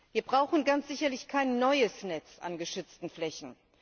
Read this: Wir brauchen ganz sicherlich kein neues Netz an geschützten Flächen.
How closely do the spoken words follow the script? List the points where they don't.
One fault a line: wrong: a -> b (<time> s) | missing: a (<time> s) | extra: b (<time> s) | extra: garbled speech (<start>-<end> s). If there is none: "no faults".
no faults